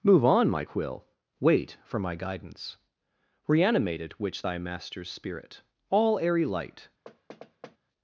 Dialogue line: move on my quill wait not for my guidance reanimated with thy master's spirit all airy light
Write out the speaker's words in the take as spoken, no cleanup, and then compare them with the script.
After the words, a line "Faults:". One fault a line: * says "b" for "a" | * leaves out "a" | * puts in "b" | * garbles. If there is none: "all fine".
move on my quill wait for my guidance reanimated which thy master's spirit all airy light
Faults:
* leaves out "not"
* says "which" for "with"